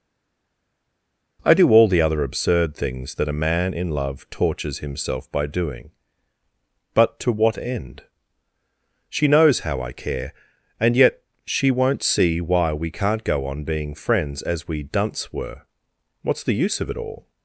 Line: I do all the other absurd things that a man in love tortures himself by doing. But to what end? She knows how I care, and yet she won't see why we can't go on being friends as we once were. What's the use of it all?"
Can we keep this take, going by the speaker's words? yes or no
no